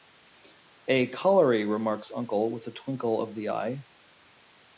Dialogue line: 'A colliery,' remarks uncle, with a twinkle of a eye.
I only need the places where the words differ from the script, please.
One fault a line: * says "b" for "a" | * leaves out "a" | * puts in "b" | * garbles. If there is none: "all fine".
* says "the" for "a"